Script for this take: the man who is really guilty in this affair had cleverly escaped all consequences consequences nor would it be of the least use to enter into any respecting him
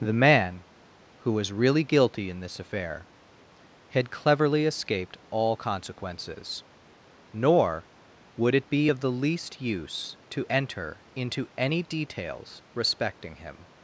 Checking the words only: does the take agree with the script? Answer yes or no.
no